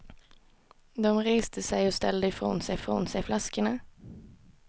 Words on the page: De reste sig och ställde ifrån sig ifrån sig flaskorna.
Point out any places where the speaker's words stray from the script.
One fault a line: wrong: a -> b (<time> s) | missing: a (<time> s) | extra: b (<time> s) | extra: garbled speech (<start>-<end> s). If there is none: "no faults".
no faults